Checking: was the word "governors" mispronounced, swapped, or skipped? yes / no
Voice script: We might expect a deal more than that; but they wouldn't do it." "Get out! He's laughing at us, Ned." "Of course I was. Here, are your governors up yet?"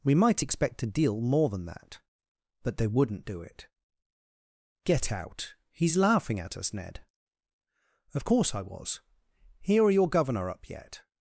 yes